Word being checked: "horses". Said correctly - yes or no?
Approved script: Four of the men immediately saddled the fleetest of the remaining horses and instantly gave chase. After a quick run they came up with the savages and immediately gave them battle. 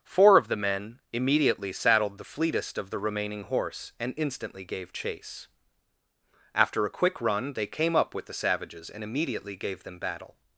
no